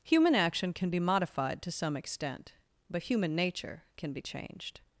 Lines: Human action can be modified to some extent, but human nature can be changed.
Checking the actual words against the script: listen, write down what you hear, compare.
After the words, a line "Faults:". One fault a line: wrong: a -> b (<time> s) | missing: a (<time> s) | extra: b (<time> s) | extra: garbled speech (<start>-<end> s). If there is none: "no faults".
Human action can be modified to some extent, but human nature can be changed.
Faults:
no faults